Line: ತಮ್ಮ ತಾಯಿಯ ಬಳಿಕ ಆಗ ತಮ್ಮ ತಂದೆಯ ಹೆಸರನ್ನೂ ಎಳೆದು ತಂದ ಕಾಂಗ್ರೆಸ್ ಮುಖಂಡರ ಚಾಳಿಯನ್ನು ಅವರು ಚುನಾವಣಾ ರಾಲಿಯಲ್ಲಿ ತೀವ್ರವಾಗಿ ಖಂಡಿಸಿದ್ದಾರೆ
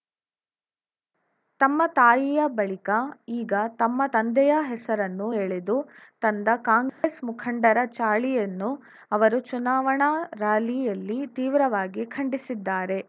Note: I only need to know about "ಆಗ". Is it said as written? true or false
false